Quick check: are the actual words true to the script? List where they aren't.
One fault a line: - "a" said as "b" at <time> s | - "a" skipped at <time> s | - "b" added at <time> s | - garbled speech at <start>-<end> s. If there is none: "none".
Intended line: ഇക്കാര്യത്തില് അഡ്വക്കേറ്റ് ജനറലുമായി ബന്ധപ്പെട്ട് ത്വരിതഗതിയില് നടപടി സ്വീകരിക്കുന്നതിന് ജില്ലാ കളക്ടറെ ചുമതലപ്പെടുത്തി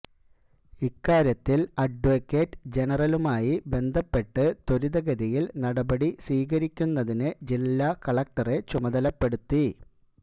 none